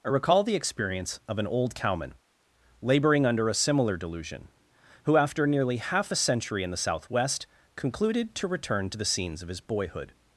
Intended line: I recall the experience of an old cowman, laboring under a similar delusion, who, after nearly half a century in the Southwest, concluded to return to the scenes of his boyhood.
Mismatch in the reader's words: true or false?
false